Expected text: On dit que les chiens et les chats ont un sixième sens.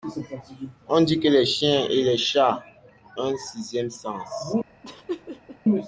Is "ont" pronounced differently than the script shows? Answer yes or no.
yes